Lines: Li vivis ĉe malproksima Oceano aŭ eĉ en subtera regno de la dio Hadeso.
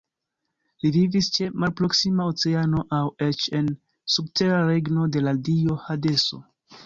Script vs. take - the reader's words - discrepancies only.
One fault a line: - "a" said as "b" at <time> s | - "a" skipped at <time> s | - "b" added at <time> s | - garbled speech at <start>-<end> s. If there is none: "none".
none